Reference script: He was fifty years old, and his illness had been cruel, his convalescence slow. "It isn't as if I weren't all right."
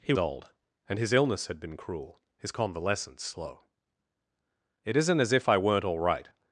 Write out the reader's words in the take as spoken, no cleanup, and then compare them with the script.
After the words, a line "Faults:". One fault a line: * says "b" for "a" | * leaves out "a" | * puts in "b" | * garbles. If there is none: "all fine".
He old, and his illness had been cruel, his convalescence slow. "It isn't as if I weren't all right."
Faults:
* leaves out "was fifty years"